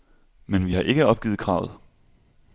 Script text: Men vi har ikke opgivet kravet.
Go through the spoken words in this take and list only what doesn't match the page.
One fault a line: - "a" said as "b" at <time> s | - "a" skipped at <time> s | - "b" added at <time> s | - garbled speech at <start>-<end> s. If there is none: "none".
none